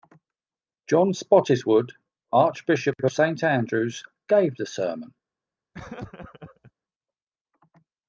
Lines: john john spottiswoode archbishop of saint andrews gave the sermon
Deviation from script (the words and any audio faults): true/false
true